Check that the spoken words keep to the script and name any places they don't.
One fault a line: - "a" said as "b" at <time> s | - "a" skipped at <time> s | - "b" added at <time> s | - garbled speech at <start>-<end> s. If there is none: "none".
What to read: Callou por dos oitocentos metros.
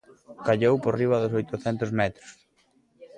- "riba" added at 1.0 s